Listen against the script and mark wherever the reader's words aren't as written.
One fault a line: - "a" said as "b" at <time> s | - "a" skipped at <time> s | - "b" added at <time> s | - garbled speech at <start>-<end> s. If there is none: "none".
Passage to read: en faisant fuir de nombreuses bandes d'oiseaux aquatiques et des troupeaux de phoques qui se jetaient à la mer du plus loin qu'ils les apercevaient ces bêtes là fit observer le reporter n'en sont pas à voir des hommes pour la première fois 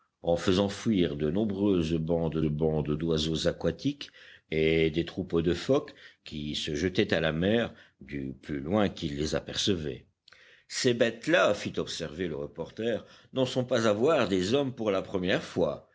- "bandes" added at 2.4 s